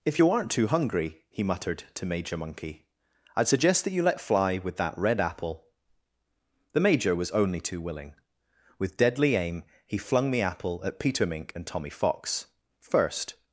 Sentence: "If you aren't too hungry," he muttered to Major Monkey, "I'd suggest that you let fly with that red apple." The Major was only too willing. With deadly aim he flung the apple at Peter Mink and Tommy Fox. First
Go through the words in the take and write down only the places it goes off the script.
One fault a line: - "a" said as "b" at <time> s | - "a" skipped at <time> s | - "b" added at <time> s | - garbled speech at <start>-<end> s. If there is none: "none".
none